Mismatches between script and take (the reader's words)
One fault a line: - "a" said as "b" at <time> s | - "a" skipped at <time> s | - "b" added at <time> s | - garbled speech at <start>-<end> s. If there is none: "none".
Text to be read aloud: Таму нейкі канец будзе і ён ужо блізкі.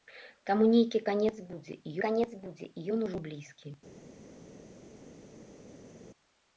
- "канец будзе і" added at 2.0 s